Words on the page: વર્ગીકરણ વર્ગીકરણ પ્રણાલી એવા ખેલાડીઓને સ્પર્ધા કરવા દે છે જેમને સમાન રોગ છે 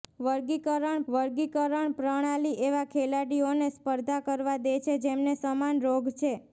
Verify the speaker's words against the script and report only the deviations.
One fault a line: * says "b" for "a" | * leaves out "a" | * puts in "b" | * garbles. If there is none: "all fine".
all fine